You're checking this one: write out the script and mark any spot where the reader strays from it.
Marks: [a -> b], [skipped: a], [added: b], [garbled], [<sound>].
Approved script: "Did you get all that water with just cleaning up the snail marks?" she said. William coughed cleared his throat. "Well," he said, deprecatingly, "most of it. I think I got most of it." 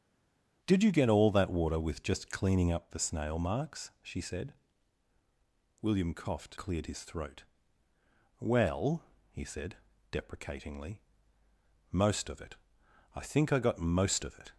"Did you get all that water with just cleaning up the snail marks?" she said. William coughed cleared his throat. "Well," he said, deprecatingly, "most of it. I think I got most of it."